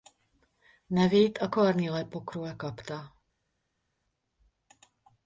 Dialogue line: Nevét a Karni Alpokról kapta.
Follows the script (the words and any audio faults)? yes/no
yes